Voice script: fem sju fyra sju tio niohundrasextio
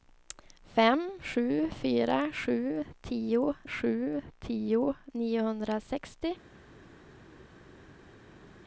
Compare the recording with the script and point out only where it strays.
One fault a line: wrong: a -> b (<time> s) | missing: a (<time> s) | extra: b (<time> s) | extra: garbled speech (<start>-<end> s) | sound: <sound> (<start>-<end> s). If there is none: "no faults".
extra: sju tio (3.7 s)